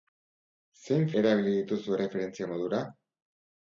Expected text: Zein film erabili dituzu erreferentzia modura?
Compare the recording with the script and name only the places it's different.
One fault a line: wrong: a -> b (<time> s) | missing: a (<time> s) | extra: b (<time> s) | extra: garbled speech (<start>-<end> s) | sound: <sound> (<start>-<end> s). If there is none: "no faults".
missing: film (1.1 s)